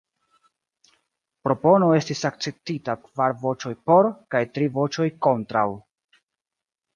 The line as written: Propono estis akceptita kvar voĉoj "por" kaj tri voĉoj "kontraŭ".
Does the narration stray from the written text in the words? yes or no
no